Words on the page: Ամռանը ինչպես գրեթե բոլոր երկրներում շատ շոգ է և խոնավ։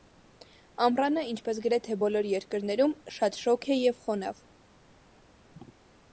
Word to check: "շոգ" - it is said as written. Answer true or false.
true